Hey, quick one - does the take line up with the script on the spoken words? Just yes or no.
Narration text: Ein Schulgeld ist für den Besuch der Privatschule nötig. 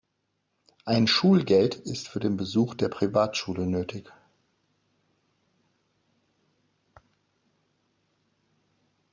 yes